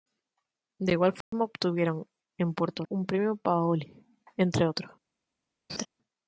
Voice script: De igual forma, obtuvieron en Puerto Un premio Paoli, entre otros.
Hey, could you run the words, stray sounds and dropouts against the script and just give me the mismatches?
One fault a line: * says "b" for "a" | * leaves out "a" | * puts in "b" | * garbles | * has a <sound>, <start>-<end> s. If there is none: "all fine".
* has a dropout, 1.2-1.3 s
* has a laugh, 5.7-5.9 s